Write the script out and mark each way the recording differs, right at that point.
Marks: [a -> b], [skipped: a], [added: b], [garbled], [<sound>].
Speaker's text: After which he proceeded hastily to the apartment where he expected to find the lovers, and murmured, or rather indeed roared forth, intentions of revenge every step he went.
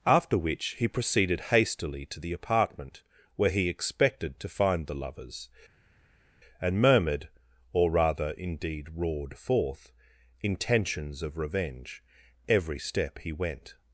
After which he proceeded hastily to the apartment where he expected to find the lovers, and murmured, or rather indeed roared forth, intentions of revenge every step he went.